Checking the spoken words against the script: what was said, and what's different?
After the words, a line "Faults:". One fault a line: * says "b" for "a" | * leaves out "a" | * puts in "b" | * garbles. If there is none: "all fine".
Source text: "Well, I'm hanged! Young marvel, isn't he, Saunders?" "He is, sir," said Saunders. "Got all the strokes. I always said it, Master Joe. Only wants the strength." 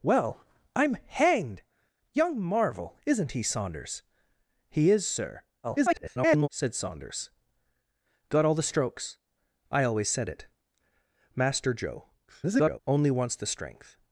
"Well, I'm hanged! Young marvel, isn't he, Saunders?" "He is, sir," [garbled] said Saunders. "Got all the strokes. I always said it, Master Joe. [garbled] Only wants the strength."
Faults:
* garbles
* garbles